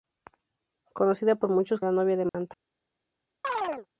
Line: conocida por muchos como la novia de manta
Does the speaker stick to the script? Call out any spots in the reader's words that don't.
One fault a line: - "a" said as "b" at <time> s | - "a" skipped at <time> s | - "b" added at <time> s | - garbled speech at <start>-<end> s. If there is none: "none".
- "como" skipped at 1.8 s